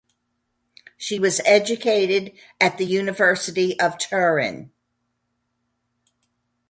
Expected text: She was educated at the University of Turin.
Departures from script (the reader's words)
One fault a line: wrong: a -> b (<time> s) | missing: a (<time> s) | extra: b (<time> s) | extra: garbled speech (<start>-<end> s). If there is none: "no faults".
no faults